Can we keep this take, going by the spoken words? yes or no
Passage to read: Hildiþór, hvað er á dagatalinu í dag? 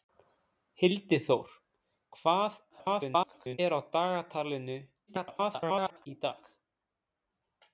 no